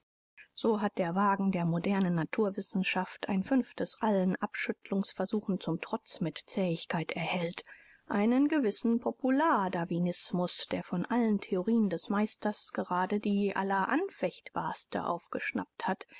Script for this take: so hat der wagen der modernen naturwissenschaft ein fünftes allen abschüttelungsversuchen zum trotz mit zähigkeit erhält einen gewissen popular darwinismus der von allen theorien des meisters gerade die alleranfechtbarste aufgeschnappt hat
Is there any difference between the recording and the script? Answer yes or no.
no